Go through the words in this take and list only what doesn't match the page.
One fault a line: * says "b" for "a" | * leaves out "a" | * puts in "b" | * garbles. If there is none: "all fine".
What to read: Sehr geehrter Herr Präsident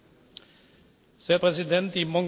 * leaves out "geehrter"